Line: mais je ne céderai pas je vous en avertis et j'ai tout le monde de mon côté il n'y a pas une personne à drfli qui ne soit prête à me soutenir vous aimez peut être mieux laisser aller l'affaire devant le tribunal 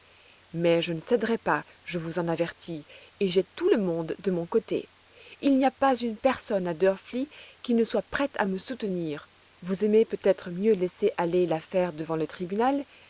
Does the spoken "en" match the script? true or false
true